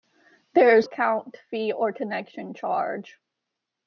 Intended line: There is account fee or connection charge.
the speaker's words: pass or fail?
pass